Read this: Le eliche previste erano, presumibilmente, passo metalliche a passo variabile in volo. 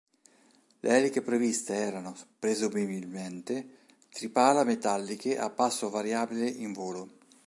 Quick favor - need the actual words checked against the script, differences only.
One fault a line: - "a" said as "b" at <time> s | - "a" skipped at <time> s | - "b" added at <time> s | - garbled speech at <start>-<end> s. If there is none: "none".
- "passo" said as "tripala" at 4.1 s